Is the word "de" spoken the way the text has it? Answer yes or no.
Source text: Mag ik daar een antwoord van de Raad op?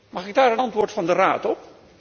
yes